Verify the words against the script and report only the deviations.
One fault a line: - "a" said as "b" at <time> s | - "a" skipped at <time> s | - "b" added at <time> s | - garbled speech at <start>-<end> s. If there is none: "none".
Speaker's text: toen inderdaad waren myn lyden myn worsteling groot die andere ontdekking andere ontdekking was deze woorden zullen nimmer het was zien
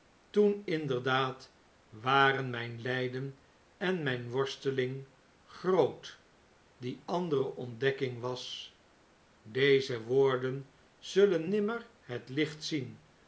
- "en" added at 3.8 s
- "andere ontdekking" skipped at 8.2 s
- "was" said as "licht" at 12.3 s